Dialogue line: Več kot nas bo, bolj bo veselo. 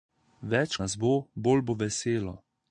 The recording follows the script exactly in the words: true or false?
false